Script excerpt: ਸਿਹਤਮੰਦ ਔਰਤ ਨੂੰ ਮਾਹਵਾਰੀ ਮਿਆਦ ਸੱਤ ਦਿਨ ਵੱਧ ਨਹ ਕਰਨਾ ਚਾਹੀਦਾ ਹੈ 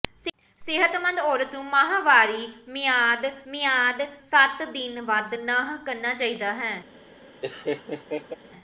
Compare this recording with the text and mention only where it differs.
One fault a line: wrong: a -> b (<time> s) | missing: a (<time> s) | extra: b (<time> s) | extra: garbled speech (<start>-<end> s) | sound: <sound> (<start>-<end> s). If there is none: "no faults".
extra: ਮਿਆਦ (3.5 s)
sound: laugh (7.4-8.4 s)